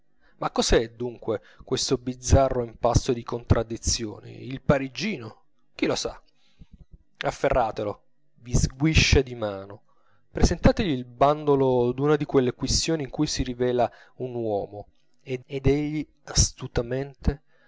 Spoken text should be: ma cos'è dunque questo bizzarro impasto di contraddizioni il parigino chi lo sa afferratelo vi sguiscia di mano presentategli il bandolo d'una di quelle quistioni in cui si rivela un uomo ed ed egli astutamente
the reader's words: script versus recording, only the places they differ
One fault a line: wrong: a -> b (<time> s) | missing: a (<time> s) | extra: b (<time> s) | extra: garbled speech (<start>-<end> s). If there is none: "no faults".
no faults